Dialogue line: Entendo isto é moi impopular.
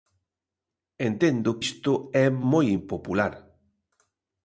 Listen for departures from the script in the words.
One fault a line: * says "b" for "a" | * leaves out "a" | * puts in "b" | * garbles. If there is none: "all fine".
all fine